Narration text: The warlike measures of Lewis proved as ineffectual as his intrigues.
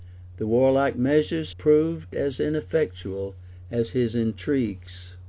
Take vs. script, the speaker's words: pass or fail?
fail